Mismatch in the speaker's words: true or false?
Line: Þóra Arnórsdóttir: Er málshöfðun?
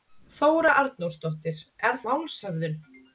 false